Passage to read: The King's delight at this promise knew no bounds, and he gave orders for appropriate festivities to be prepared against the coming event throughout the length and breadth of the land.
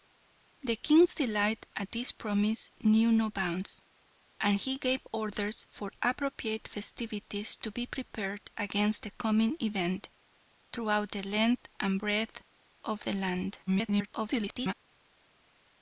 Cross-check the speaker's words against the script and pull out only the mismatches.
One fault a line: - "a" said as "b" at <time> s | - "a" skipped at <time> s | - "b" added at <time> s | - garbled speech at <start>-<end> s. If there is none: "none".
- garbled speech at 13.7-14.7 s